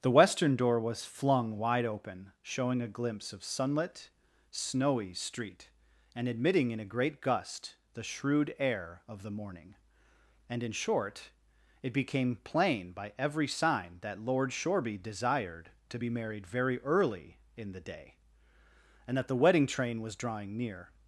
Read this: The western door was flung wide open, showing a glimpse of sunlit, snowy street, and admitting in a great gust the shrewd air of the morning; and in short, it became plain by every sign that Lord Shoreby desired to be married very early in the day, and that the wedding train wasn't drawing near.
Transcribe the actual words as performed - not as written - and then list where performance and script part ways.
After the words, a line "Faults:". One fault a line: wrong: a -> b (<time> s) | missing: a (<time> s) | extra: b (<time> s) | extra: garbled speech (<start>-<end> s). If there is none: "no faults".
The western door was flung wide open, showing a glimpse of sunlit, snowy street, and admitting in a great gust the shrewd air of the morning; and in short, it became plain by every sign that Lord Shoreby desired to be married very early in the day, and that the wedding train was drawing near.
Faults:
wrong: wasn't -> was (20.0 s)